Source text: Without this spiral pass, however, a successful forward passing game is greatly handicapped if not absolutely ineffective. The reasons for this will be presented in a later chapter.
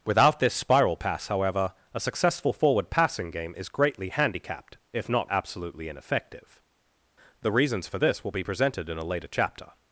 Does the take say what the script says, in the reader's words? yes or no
yes